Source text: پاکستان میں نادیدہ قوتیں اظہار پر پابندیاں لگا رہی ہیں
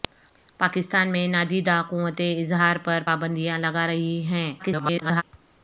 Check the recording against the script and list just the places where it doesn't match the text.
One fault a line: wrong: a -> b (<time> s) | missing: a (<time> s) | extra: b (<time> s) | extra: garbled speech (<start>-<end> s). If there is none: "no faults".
extra: garbled speech (4.6-5.2 s)